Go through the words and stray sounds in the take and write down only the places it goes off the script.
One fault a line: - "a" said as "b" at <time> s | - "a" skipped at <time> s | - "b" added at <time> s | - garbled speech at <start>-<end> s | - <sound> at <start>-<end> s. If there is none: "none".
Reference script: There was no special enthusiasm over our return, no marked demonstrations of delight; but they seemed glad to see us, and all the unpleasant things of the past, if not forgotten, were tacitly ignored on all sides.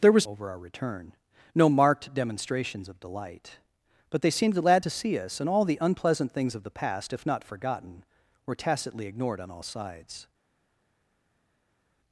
- "no special enthusiasm" skipped at 0.3 s